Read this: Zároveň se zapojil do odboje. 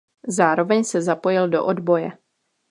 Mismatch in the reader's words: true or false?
false